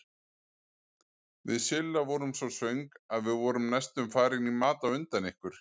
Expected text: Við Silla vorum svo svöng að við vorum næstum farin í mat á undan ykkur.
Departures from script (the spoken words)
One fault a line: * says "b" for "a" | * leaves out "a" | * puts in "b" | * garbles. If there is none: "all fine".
all fine